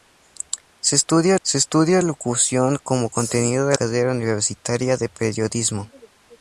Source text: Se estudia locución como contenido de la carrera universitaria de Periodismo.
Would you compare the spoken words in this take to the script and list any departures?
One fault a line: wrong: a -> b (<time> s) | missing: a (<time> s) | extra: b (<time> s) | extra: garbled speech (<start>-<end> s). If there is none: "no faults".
extra: se estudia (1.4 s)
missing: la (3.8 s)